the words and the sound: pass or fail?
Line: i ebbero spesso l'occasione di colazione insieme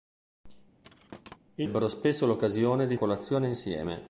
fail